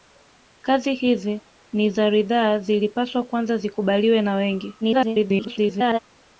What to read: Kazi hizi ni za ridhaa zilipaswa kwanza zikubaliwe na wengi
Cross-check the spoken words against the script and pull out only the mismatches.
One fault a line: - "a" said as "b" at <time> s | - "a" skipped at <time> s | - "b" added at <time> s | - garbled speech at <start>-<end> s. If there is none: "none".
- garbled speech at 4.8-6.0 s